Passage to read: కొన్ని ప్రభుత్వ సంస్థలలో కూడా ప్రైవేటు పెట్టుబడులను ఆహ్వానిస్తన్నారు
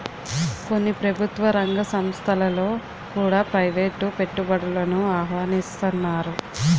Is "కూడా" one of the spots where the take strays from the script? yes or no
no